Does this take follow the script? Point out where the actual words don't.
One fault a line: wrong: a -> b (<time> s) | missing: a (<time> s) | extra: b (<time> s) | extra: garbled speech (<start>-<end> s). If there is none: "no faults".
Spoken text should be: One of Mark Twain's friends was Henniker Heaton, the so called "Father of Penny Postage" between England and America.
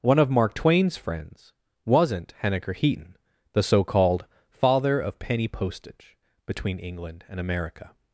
wrong: was -> wasn't (1.9 s)